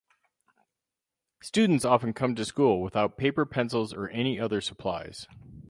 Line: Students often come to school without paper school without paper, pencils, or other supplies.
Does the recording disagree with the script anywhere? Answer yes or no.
yes